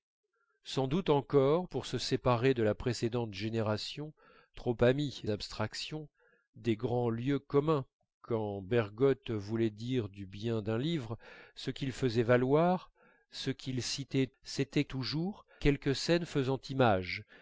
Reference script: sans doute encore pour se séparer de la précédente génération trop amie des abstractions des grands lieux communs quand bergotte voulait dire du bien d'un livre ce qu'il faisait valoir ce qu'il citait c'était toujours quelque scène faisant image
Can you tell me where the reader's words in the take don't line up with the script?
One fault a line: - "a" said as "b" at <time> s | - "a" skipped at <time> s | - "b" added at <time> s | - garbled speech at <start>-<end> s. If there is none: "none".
- "des" skipped at 5.2 s